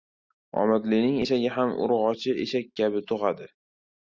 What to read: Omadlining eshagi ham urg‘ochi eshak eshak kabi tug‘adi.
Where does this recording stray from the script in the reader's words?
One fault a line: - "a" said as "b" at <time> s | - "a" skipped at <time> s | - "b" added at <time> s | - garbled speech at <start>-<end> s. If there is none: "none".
- "eshak" skipped at 2.7 s